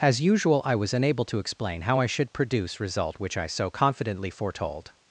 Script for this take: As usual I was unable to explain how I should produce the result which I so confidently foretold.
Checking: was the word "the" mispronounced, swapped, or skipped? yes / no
yes